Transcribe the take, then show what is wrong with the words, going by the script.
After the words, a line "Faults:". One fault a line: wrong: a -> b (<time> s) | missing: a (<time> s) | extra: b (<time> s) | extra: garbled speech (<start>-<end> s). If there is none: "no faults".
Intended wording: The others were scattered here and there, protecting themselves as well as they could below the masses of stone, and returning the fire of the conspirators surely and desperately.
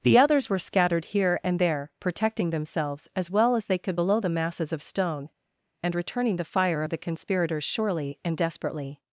The others were scattered here and there, protecting themselves as well as they could below the masses of stone, and returning the fire of the conspirators surely and desperately.
Faults:
no faults